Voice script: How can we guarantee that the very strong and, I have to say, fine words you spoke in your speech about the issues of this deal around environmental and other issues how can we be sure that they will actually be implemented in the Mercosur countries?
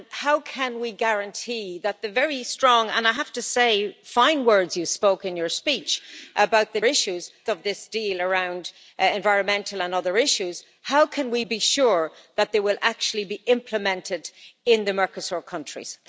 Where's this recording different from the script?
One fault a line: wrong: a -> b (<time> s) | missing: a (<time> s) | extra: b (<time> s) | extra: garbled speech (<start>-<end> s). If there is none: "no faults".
no faults